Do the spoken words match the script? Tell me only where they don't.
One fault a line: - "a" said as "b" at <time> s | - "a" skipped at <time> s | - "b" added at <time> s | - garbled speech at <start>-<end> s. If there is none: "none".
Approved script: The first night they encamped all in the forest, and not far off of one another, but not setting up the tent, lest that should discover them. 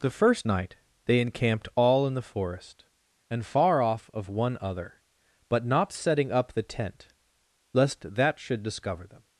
- "not" skipped at 3.5 s
- "another" said as "other" at 4.6 s